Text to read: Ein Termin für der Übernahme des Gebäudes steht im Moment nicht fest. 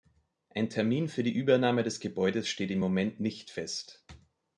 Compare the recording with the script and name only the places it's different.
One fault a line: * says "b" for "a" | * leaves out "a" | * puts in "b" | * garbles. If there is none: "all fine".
* says "die" for "der"